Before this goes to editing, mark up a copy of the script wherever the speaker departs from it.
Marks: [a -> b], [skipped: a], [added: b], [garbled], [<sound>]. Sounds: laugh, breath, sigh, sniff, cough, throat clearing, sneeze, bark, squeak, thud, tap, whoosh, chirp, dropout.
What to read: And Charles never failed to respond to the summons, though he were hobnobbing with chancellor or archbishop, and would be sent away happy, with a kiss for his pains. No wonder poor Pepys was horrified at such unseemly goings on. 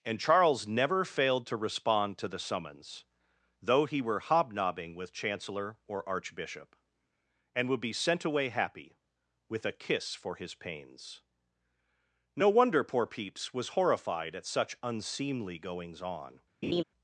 And Charles never failed to respond to the summons, though he were hobnobbing with chancellor or archbishop, and would be sent away happy, with a kiss for his pains. No wonder poor Pepys was horrified at such unseemly goings on. [laugh]